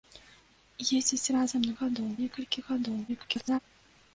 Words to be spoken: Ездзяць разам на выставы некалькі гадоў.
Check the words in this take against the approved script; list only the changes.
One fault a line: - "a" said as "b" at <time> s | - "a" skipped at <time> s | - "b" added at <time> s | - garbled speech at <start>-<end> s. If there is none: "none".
- "выставы" said as "гадоў" at 1.8 s
- garbled speech at 3.1-3.6 s